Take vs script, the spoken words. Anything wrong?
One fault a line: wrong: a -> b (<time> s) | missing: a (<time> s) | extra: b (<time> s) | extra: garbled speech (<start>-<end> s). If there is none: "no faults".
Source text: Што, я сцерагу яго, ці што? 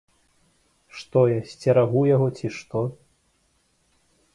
no faults